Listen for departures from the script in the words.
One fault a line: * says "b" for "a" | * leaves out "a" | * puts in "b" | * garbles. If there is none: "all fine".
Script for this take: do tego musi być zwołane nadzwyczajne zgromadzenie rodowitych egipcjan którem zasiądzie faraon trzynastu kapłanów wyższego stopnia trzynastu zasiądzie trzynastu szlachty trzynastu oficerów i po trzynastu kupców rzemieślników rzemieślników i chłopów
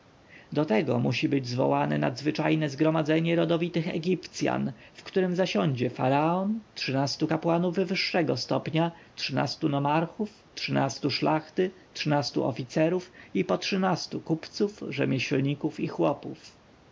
* puts in "w"
* says "nomarchów" for "zasiądzie"
* leaves out "rzemieślników"